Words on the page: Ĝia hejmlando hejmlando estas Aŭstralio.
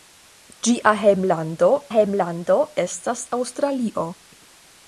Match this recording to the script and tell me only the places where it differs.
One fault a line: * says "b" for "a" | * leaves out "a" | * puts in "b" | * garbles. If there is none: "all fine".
all fine